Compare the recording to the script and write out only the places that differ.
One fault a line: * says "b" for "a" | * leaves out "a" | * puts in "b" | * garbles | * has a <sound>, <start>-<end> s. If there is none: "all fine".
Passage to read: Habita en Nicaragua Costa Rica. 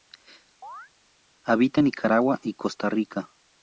* has a chirp, 0.6-0.9 s
* puts in "y"